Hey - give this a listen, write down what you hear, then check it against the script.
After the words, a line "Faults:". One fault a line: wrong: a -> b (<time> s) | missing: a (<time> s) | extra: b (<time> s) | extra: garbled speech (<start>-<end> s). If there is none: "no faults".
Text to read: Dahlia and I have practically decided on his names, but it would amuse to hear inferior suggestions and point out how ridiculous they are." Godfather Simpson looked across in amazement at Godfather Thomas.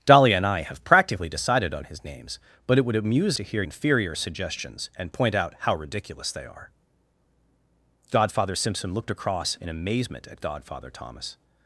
Dahlia and I have practically decided on his names, but it would amuse to hear inferior suggestions and point out how ridiculous they are." Godfather Simpson looked across in amazement at Godfather Thomas.
Faults:
no faults